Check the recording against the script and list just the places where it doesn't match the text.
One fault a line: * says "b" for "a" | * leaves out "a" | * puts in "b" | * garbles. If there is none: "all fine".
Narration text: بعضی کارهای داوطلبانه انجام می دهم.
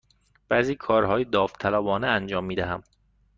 all fine